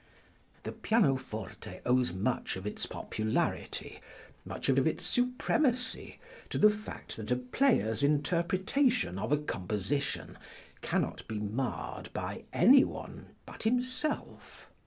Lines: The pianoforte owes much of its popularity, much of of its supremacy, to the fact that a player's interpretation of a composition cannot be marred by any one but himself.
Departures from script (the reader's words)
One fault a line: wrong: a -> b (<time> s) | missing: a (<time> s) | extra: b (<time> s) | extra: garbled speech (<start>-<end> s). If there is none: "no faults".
no faults